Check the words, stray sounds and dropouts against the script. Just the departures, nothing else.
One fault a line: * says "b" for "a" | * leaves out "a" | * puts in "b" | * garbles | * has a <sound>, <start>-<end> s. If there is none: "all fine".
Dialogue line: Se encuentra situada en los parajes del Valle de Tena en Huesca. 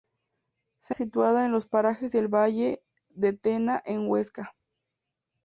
* leaves out "encuentra"